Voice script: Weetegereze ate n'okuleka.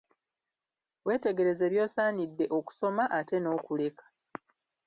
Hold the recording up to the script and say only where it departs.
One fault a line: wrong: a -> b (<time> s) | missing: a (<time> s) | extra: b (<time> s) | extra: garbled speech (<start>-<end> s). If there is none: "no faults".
extra: by'osaanidde okusoma (1.7 s)